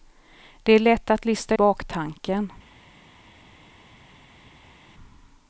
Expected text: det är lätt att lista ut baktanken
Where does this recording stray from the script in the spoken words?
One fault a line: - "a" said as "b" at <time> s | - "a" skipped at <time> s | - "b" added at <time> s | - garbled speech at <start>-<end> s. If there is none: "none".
- "ut" skipped at 1.6 s